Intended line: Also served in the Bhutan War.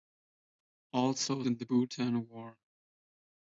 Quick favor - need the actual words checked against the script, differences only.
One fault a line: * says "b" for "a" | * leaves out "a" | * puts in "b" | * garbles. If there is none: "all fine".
* leaves out "served"